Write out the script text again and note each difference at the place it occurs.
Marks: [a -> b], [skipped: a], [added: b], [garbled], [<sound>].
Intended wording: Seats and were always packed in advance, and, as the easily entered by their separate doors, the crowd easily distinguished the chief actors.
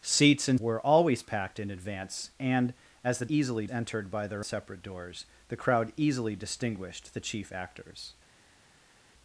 Seats and were always packed in advance, and, as the easily entered by their separate doors, the crowd easily distinguished the chief actors.